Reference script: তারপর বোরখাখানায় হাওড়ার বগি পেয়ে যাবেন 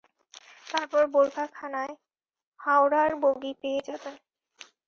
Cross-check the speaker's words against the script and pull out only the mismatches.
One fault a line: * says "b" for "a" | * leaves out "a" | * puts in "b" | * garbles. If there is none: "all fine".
all fine